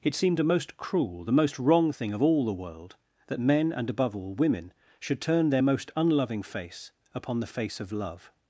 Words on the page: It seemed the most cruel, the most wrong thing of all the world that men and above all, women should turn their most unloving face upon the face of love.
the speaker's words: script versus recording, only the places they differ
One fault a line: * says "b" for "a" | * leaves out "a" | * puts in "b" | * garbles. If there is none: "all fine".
* says "a" for "the"